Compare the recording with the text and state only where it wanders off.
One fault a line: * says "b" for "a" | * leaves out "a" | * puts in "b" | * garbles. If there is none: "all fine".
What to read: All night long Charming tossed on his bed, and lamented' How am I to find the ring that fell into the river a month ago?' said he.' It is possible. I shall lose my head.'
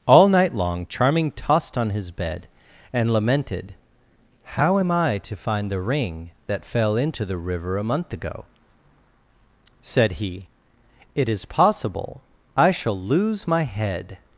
all fine